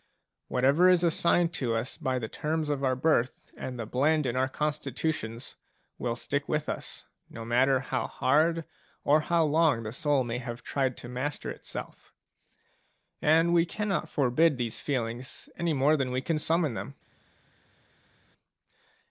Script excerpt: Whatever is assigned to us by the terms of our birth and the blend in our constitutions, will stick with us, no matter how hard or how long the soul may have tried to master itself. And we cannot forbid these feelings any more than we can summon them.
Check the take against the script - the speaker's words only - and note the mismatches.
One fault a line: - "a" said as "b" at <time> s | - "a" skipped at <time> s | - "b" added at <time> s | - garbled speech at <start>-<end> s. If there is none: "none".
none